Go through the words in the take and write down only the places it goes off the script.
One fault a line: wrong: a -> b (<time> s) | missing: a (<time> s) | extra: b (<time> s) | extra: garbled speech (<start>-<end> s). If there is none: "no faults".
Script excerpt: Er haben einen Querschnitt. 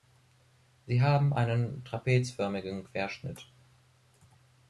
wrong: Er -> Sie (0.9 s)
extra: trapezförmigen (1.8 s)